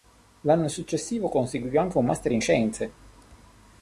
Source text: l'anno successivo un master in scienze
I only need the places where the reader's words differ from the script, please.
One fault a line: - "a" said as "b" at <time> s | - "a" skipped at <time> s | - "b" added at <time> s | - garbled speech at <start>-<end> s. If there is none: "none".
- "conseguì anche" added at 1.3 s